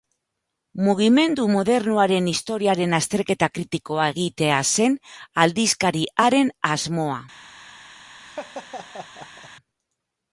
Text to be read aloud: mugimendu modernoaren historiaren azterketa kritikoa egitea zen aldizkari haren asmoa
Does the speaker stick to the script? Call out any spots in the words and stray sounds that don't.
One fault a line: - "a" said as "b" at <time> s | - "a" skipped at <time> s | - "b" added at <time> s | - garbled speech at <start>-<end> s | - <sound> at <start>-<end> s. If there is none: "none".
- laugh at 8.2-9.5 s